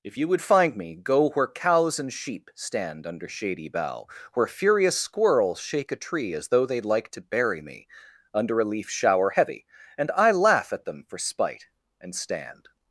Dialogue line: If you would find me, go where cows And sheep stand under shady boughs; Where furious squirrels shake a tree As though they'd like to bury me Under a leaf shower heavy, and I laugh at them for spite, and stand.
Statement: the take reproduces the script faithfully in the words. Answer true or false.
false